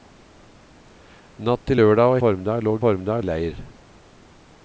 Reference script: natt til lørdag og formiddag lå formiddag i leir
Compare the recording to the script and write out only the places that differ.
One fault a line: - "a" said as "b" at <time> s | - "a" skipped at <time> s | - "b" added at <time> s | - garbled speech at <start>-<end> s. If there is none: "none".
none